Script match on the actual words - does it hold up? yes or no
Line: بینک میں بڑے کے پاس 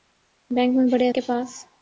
yes